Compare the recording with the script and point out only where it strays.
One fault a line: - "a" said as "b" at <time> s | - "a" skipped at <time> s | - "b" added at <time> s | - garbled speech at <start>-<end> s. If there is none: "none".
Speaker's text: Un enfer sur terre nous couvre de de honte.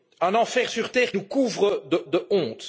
none